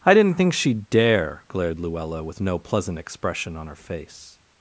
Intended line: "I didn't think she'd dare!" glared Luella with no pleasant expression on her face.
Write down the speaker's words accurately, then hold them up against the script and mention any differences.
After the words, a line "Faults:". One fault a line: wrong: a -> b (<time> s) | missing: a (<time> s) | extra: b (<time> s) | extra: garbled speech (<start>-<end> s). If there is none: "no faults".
"I didn't think she'd dare!" glared Luella with no pleasant expression on her face.
Faults:
no faults